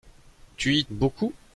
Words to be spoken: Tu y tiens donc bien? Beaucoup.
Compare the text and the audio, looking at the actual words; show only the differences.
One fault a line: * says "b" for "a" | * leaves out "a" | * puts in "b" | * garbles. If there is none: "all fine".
* leaves out "tiens donc bien"